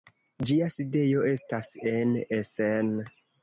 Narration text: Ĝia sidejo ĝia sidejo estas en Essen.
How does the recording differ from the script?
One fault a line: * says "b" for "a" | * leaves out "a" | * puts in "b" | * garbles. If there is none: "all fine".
* leaves out "ĝia sidejo"